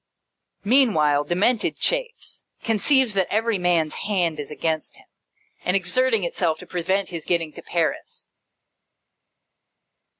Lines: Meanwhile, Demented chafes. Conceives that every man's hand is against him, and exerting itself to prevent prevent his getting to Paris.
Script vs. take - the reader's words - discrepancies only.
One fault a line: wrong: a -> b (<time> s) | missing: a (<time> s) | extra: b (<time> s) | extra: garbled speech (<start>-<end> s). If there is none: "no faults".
missing: prevent (7.1 s)